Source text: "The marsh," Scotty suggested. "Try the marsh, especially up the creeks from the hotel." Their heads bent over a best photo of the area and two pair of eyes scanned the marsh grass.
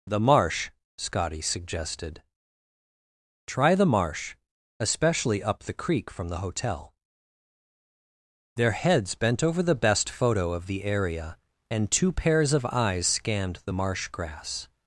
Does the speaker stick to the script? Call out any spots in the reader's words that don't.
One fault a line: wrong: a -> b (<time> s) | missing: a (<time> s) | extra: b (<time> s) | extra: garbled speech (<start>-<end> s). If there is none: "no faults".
wrong: creeks -> creek (5.7 s)
wrong: a -> the (9.6 s)
wrong: pair -> pairs (12.1 s)